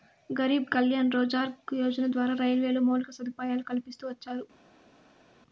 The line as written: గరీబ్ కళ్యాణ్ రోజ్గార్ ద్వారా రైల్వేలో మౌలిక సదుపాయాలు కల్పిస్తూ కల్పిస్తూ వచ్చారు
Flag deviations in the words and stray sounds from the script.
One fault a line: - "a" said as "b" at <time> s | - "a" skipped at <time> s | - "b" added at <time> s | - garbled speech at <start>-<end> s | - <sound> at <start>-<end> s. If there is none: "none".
- "యోజన" added at 1.8 s
- "కల్పిస్తూ" skipped at 4.0 s